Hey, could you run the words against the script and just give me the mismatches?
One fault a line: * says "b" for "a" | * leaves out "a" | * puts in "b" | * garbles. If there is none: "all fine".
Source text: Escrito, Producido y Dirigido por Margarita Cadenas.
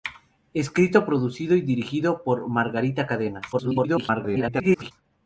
* garbles